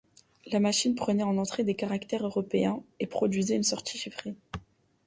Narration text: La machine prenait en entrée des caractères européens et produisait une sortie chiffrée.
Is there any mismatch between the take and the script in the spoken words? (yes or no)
no